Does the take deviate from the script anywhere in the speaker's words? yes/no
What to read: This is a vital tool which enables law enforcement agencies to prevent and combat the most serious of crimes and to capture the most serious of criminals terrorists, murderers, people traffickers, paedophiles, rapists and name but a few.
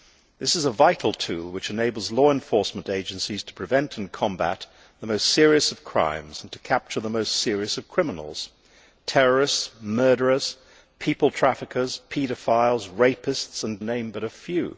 no